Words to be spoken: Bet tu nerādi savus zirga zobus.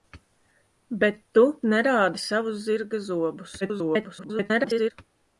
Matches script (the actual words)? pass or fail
fail